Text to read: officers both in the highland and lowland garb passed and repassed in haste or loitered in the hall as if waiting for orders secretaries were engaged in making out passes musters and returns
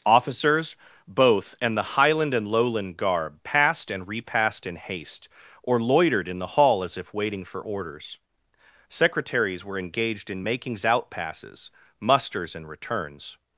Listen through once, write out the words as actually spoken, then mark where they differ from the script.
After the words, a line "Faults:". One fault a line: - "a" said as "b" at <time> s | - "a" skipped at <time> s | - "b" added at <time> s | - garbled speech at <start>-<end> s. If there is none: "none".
officers both and the highland and lowland garb passed and repassed in haste or loitered in the hall as if waiting for orders secretaries were engaged in makings out passes musters and returns
Faults:
- "in" said as "and" at 1.6 s
- "making" said as "makings" at 10.4 s